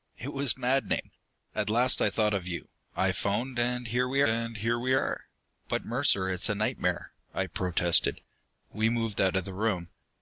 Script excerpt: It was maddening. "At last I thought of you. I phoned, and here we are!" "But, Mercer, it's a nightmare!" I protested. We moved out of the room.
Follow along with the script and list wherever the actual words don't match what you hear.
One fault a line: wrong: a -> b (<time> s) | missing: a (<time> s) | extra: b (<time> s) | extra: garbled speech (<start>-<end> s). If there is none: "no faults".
extra: and here we (4.3 s)